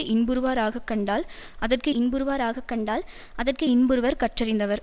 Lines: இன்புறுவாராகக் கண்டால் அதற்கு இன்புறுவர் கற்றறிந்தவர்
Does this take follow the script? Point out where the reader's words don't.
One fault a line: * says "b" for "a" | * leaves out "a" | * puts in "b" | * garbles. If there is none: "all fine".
* puts in "இன்புறுவாராகக் கண்டால் அதற்கு"